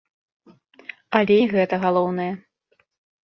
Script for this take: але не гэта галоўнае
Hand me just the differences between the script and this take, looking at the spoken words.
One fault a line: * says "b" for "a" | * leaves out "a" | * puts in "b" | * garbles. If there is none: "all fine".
all fine